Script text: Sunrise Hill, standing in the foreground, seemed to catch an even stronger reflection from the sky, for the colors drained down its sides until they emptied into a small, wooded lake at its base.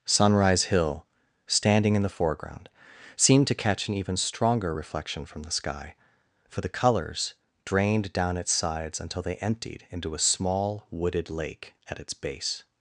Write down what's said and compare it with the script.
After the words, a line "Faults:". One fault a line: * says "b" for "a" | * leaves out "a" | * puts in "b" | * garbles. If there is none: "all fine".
Sunrise Hill, standing in the foreground, seemed to catch an even stronger reflection from the sky, for the colors drained down its sides until they emptied into a small, wooded lake at its base.
Faults:
all fine